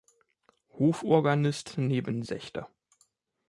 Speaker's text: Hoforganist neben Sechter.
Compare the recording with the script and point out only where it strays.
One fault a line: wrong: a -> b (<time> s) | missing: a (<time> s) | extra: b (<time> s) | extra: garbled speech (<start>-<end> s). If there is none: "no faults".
no faults